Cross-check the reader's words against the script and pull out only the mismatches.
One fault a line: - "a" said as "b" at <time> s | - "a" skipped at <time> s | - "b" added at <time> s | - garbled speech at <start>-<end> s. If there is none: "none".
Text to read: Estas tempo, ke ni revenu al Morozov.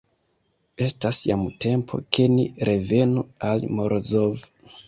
- "jam" added at 1.3 s